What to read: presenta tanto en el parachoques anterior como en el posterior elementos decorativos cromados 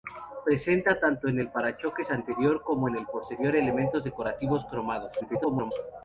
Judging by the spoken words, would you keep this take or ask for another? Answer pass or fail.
fail